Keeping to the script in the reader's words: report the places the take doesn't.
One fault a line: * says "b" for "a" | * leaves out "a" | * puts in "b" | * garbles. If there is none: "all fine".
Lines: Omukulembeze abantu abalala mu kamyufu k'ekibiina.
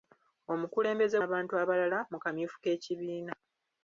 all fine